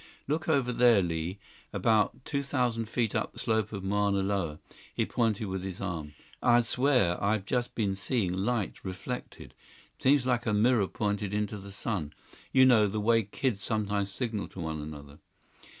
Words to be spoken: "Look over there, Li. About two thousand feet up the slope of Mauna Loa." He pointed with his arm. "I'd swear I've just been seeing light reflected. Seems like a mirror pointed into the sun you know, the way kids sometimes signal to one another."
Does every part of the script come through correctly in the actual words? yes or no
yes